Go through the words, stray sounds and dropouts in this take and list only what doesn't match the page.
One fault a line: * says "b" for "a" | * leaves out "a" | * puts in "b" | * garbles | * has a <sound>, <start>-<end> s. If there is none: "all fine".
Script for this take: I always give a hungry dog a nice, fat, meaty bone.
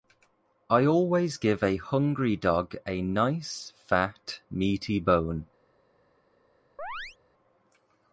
* has a chirp, 6.8-7.2 s